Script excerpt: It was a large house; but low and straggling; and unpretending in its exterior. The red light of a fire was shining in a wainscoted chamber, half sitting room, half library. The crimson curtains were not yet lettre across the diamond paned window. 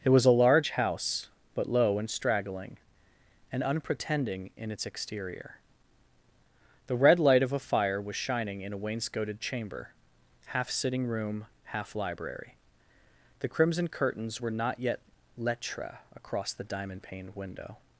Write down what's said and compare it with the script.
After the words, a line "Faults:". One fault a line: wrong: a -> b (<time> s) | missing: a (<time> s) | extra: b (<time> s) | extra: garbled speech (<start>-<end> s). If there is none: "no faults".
It was a large house; but low and straggling; and unpretending in its exterior. The red light of a fire was shining in a wainscoted chamber, half sitting room, half library. The crimson curtains were not yet lettre across the diamond paned window.
Faults:
no faults